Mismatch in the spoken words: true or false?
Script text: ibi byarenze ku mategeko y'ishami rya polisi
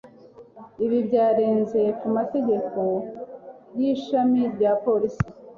false